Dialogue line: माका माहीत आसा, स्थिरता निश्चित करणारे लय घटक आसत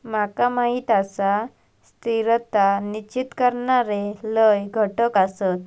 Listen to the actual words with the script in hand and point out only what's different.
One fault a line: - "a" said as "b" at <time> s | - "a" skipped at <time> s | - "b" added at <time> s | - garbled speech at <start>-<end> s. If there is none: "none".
none